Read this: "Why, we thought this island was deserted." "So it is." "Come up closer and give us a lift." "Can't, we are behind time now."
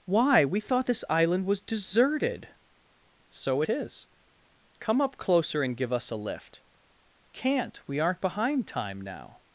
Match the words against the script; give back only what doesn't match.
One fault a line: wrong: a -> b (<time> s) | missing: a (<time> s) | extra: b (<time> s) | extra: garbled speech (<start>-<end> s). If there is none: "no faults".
wrong: are -> aren't (8.0 s)